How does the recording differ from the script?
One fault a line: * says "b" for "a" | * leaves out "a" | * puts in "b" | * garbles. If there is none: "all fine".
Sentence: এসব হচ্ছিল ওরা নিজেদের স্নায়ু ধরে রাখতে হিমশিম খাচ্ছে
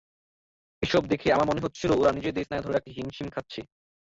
* puts in "দেখে আমার মনে"